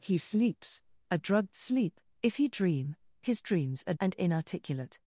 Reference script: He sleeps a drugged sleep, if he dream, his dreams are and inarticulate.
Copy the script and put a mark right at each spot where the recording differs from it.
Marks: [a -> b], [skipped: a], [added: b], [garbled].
He sleeps a drugged sleep, if he dream, his dreams are and inarticulate.